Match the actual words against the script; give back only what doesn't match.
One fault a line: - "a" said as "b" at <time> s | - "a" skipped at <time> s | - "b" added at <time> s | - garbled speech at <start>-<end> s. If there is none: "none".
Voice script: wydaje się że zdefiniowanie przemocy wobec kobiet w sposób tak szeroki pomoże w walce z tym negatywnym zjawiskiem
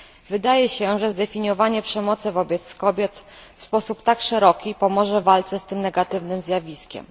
none